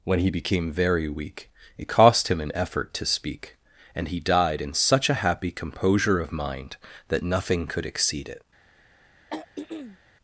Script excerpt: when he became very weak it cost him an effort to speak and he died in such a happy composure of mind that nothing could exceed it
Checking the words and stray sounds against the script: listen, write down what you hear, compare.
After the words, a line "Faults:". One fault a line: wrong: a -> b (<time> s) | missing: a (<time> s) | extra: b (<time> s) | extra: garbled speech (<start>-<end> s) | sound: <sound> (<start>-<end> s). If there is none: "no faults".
when he became very weak it cost him an effort to speak and he died in such a happy composure of mind that nothing could exceed it
Faults:
sound: throat clearing (9.3-10.0 s)